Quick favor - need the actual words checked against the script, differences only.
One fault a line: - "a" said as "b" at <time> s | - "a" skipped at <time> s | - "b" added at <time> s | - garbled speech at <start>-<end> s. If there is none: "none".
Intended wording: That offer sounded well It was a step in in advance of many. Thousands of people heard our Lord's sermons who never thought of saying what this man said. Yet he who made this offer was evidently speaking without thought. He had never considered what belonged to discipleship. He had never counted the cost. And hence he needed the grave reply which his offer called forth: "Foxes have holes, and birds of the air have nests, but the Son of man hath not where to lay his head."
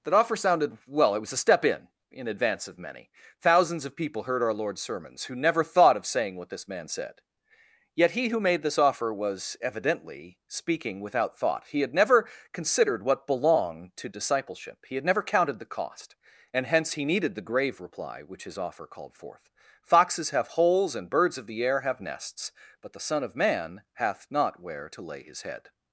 none